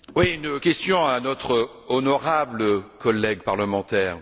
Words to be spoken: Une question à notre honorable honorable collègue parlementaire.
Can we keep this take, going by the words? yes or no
no